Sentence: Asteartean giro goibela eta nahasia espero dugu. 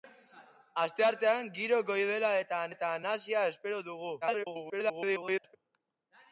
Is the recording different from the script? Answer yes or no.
yes